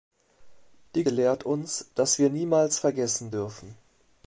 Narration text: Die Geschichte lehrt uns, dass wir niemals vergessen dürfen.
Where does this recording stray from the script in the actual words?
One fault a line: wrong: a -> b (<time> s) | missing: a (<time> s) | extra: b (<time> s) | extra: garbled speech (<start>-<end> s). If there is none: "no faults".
missing: Geschichte (1.0 s)